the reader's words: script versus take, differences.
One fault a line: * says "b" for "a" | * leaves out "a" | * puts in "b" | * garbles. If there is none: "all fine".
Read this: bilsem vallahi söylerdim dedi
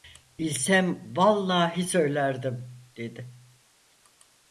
all fine